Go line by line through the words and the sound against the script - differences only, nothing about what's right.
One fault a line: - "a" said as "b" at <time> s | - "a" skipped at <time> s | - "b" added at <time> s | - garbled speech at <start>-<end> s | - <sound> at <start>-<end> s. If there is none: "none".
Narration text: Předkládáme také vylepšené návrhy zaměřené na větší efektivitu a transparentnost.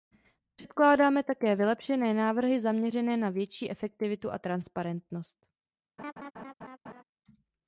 - laugh at 6.0-7.0 s